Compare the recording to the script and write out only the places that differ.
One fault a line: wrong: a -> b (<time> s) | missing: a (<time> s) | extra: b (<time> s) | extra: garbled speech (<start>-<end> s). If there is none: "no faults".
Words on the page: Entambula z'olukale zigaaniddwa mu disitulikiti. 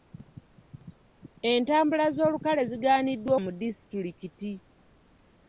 no faults